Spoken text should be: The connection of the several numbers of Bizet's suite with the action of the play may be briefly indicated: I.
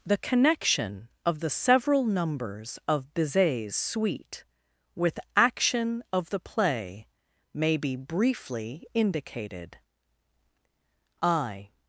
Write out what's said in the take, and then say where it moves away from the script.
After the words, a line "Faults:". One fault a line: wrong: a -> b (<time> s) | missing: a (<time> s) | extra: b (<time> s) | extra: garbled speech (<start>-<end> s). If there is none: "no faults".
The connection of the several numbers of Bizet's suite with action of the play may be briefly indicated: I.
Faults:
missing: the (5.2 s)